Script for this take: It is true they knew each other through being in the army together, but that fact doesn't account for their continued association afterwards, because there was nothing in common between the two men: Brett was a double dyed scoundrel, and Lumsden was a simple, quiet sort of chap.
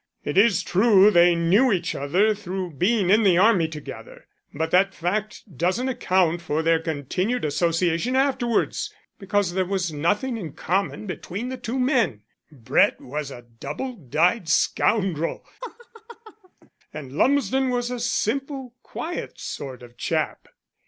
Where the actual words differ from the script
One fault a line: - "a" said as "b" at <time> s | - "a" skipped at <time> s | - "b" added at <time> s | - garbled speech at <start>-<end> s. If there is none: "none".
none